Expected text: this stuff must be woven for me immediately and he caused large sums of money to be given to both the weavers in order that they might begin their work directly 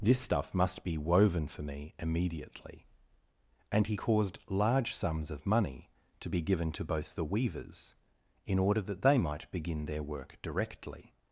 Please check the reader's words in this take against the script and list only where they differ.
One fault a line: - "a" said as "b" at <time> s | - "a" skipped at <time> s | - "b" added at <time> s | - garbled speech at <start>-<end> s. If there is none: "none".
none